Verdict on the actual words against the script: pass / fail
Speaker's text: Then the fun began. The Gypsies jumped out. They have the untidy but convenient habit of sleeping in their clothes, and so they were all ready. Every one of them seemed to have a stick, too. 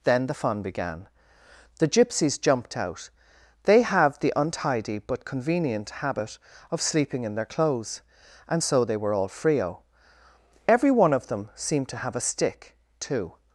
fail